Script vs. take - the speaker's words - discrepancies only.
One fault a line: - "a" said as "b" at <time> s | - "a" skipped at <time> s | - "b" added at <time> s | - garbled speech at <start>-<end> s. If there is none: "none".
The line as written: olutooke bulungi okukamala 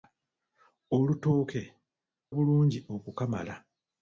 none